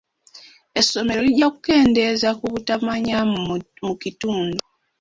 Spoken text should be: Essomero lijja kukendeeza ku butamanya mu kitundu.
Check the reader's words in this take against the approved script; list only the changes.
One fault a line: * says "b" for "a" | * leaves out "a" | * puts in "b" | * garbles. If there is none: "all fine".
all fine